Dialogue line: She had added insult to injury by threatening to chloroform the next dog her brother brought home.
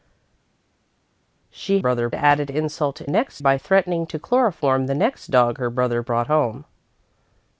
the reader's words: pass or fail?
fail